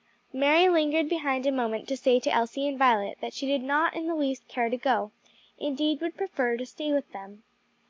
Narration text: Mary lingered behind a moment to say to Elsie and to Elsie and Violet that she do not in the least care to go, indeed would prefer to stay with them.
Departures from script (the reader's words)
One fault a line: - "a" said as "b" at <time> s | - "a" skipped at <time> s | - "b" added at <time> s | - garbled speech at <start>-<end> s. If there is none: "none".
- "to Elsie and" skipped at 2.8 s
- "do" said as "did" at 3.5 s